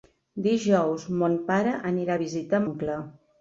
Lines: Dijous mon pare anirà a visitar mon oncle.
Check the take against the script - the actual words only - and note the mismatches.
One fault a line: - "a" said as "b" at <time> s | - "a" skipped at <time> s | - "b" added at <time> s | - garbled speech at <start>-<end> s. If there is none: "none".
- "mon" skipped at 2.7 s